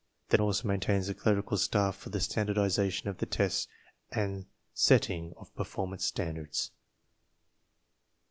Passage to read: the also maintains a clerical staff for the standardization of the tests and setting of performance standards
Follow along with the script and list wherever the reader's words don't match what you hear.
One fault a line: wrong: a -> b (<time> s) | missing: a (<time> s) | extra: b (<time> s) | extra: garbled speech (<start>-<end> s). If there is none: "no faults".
no faults